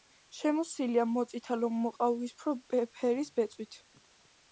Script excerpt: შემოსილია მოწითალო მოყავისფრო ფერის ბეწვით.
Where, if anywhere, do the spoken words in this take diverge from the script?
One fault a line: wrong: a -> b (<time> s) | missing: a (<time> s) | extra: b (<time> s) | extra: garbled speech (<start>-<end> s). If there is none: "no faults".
no faults